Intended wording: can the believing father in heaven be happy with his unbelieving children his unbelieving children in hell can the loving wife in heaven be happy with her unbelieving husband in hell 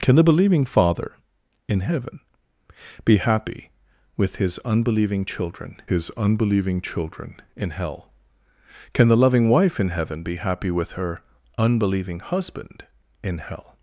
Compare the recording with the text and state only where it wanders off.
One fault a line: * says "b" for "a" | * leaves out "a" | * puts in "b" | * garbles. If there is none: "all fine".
all fine